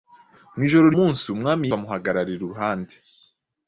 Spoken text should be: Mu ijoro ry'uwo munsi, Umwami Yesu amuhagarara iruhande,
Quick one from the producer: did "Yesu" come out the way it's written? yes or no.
no